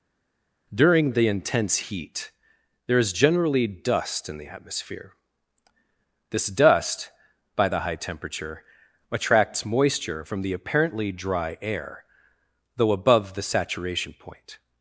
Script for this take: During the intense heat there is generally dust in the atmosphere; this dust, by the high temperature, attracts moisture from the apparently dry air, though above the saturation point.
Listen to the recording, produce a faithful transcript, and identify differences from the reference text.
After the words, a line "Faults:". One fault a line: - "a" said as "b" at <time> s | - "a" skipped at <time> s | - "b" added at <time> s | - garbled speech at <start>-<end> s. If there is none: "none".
During the intense heat there is generally dust in the atmosphere; this dust, by the high temperature, attracts moisture from the apparently dry air, though above the saturation point.
Faults:
none